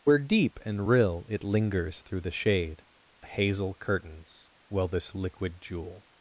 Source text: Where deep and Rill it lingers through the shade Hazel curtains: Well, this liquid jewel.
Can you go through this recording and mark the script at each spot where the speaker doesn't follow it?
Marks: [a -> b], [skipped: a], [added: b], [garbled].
Where deep and Rill it lingers through the shade Hazel curtains: Well, this liquid jewel.